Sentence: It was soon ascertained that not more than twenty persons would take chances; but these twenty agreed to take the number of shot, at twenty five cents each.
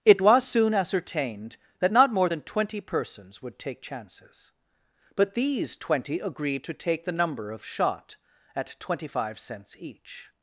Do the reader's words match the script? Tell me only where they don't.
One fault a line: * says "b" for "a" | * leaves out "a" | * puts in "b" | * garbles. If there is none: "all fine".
all fine